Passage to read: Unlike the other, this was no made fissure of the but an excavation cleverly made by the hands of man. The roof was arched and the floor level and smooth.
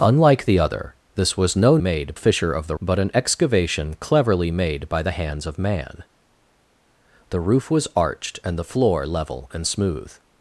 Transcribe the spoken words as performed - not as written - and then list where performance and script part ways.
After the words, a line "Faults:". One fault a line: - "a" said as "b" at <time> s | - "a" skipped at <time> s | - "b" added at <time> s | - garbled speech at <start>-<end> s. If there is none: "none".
Unlike the other, this was no made fissure of the but an excavation cleverly made by the hands of man. The roof was arched and the floor level and smooth.
Faults:
none